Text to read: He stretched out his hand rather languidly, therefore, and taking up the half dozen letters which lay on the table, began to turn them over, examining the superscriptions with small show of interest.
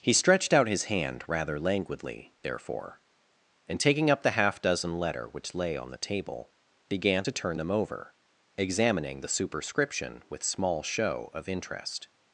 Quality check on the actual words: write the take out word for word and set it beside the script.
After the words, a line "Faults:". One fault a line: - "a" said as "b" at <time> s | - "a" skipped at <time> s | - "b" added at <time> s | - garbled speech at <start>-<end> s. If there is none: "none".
He stretched out his hand rather languidly, therefore, and taking up the half dozen letter which lay on the table, began to turn them over, examining the superscription with small show of interest.
Faults:
- "letters" said as "letter" at 5.0 s
- "superscriptions" said as "superscription" at 9.3 s